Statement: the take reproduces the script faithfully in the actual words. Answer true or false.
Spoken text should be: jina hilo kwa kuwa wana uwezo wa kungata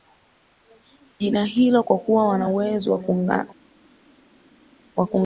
true